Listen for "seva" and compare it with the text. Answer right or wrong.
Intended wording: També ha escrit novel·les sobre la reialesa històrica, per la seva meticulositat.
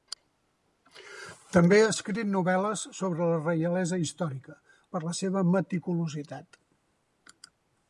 right